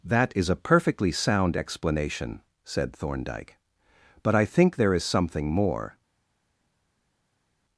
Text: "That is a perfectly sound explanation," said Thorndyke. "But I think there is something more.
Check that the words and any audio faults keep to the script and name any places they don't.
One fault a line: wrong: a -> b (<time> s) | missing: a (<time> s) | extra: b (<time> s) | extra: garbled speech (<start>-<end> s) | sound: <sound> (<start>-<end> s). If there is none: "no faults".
no faults